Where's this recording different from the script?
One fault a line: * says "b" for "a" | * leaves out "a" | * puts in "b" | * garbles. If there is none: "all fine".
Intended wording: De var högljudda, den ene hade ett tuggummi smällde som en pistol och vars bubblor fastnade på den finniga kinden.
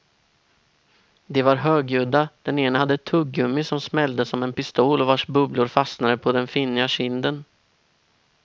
* puts in "som"